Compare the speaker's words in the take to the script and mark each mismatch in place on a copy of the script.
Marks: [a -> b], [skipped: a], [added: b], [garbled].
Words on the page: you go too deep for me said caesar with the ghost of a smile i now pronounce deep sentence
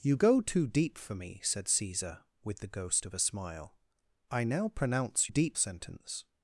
you go too deep for me said caesar with the ghost of a smile i now pronounce deep sentence